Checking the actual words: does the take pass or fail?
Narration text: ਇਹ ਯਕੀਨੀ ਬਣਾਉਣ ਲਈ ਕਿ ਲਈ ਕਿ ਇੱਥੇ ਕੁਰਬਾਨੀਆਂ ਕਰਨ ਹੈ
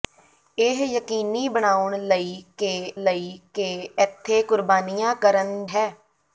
pass